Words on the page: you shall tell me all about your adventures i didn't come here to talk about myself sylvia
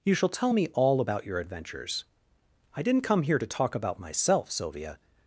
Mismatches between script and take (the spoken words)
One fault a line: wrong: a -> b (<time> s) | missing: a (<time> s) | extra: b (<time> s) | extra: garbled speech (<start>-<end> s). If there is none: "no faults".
no faults